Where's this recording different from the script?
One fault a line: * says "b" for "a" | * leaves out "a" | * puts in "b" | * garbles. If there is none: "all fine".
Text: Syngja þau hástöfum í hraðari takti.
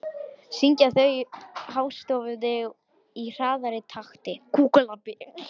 all fine